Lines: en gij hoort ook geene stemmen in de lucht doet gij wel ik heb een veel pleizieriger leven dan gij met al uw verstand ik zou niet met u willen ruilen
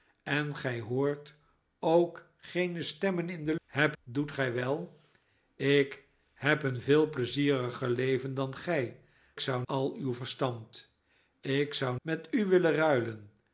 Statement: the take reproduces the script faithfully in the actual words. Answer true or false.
false